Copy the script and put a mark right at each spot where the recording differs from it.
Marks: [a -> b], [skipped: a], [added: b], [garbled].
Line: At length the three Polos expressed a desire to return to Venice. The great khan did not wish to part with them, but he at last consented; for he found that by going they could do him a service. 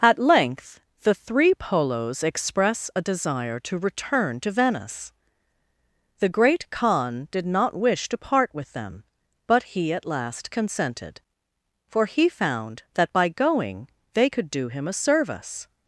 At length the three Polos [expressed -> express] a desire to return to Venice. The great khan did not wish to part with them, but he at last consented; for he found that by going they could do him a service.